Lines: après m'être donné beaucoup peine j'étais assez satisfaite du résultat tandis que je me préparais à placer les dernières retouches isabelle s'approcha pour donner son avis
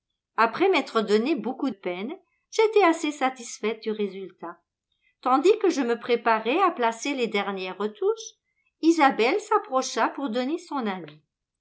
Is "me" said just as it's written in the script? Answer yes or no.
yes